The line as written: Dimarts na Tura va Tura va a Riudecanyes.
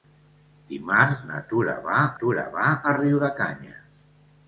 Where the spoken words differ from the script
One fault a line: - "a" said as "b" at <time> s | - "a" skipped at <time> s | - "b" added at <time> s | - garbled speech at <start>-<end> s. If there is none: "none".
none